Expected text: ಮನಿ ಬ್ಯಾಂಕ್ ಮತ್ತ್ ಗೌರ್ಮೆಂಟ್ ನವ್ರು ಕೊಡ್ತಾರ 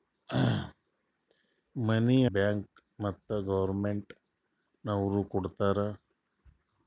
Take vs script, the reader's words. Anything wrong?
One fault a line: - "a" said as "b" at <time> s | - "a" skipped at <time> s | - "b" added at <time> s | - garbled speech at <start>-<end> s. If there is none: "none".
none